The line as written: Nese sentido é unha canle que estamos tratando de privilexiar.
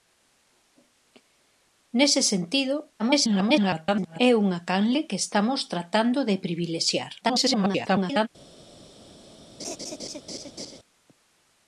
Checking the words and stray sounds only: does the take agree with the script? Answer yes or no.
no